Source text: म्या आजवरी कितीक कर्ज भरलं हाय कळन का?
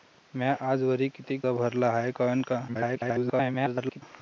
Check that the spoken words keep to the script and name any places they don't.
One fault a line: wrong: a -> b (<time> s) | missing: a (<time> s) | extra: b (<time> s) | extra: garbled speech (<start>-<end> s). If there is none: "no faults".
missing: कर्ज (1.4 s)
extra: garbled speech (2.7-4.0 s)